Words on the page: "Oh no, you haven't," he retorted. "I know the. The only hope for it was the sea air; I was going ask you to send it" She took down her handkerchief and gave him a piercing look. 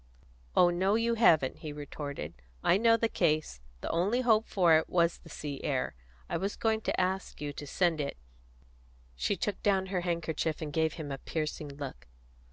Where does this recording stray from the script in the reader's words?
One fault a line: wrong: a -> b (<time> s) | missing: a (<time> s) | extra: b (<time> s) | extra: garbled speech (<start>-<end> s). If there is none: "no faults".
extra: case (3.1 s)
extra: to (6.9 s)